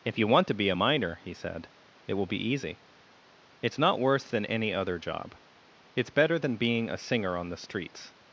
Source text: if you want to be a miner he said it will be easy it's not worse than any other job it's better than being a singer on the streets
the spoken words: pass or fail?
pass